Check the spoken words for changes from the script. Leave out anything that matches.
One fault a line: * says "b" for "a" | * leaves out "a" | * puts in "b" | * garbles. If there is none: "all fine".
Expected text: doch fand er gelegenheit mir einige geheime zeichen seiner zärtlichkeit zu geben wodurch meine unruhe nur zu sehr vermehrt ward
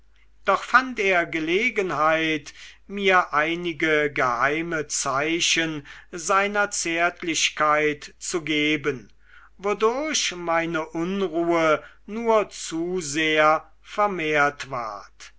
all fine